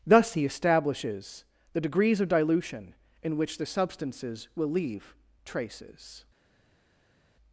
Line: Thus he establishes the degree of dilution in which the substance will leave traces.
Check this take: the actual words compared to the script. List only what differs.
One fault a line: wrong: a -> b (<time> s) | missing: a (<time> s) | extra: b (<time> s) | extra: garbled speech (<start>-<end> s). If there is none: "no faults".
wrong: degree -> degrees (1.8 s)
wrong: substance -> substances (3.6 s)